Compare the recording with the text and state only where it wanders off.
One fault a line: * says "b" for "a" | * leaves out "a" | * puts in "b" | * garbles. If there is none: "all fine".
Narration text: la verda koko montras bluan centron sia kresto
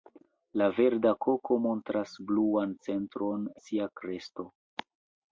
all fine